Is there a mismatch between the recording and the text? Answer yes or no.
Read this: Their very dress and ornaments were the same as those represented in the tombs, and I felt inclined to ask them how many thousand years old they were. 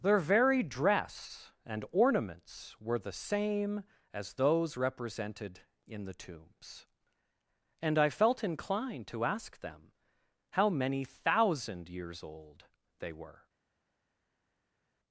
no